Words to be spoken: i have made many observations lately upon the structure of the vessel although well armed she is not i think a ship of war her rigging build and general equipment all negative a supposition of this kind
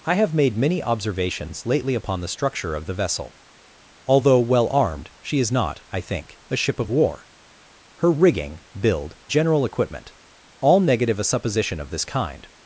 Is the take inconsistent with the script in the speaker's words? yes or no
yes